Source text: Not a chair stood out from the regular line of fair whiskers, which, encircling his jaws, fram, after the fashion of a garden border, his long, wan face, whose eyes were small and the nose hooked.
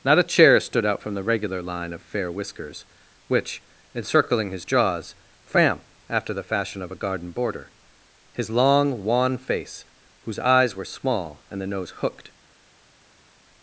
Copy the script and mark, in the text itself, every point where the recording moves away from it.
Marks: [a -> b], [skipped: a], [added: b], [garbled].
Not a chair stood out from the regular line of fair whiskers, which, encircling his jaws, fram, after the fashion of a garden border, his long, wan face, whose eyes were small and the nose hooked.